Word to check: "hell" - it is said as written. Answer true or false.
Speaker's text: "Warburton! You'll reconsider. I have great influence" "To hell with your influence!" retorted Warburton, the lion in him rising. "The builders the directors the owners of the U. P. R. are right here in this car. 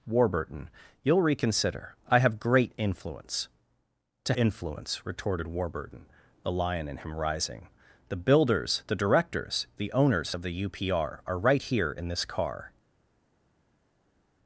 false